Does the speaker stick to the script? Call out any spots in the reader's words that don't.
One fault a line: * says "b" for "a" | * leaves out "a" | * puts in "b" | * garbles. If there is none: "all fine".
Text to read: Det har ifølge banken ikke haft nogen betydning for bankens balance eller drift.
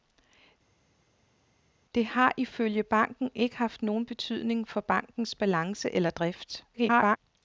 * garbles